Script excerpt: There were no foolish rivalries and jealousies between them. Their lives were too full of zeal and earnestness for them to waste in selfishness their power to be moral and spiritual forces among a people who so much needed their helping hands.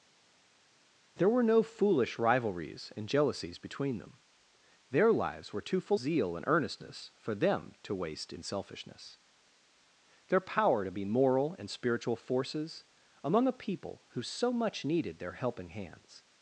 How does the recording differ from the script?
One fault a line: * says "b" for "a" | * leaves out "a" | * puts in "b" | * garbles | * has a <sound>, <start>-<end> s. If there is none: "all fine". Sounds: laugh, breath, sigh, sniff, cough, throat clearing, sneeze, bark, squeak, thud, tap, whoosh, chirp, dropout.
* leaves out "of"